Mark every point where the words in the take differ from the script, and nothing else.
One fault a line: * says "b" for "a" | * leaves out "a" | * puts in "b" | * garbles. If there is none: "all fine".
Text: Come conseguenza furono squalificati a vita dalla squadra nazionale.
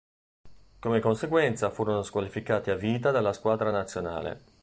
all fine